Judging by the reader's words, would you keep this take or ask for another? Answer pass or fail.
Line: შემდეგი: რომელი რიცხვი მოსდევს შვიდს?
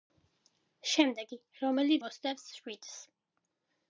fail